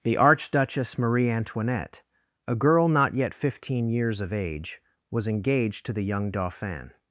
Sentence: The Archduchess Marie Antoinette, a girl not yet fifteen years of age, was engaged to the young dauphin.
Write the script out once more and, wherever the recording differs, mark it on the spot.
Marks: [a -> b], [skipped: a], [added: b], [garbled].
The Archduchess Marie Antoinette, a girl not yet fifteen years of age, was engaged to the young dauphin.